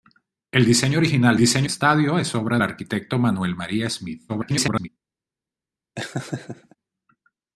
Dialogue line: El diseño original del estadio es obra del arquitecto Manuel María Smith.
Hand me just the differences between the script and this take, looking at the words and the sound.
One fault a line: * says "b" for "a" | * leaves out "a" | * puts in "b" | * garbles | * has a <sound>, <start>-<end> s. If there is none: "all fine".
* says "diseño" for "del"
* leaves out "del"
* garbles
* has a laugh, 6.0-6.8 s